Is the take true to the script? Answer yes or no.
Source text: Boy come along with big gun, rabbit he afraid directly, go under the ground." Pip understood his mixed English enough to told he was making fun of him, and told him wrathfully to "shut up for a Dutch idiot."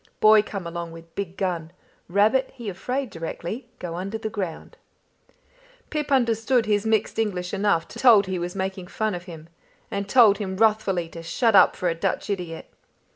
yes